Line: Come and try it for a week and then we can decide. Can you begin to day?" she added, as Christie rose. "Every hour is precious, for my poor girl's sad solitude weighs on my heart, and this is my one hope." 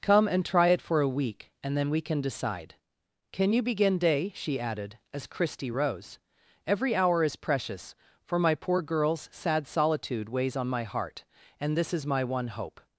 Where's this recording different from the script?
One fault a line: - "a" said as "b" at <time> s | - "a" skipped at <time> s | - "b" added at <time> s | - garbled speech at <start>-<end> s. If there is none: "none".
- "to" skipped at 4.0 s